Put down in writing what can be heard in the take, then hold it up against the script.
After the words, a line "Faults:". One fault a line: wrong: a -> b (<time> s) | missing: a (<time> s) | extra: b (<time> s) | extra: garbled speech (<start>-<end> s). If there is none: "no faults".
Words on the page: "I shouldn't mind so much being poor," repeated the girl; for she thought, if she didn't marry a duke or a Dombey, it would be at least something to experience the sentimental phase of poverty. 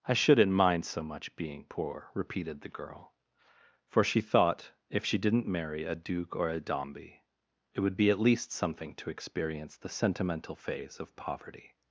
"I shouldn't mind so much being poor," repeated the girl; for she thought, if she didn't marry a duke or a Dombey, it would be at least something to experience the sentimental phase of poverty.
Faults:
no faults